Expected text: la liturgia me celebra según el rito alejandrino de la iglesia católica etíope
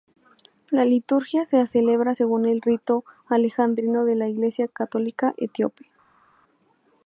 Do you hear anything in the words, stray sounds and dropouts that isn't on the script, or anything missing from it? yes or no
yes